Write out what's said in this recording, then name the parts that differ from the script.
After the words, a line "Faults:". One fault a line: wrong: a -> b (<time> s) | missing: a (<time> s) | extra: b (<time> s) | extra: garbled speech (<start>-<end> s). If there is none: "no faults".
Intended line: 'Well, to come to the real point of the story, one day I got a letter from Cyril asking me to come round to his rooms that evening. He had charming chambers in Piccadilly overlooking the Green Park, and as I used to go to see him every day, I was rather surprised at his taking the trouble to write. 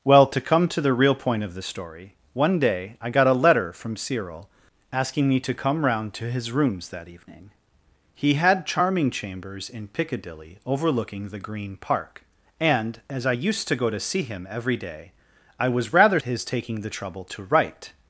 'Well, to come to the real point of the story, one day I got a letter from Cyril asking me to come round to his rooms that evening. He had charming chambers in Piccadilly overlooking the Green Park, and as I used to go to see him every day, I was rather his taking the trouble to write.
Faults:
missing: surprised at (16.2 s)